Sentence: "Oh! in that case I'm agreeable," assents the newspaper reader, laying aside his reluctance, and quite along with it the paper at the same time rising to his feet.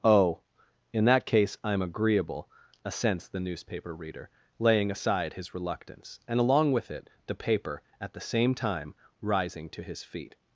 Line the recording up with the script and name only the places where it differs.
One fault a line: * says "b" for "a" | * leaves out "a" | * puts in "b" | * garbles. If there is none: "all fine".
* leaves out "quite"